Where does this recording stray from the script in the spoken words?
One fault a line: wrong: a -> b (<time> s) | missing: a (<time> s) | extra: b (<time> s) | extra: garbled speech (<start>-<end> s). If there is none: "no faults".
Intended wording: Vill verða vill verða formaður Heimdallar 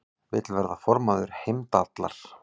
missing: vill verða (0.8 s)